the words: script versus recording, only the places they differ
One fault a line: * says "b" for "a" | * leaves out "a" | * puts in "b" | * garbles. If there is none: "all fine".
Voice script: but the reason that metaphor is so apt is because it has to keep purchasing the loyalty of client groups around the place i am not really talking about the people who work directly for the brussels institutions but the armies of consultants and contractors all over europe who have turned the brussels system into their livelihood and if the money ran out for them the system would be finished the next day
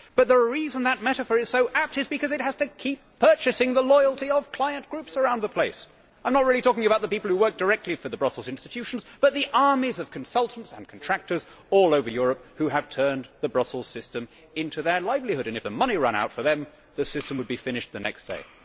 all fine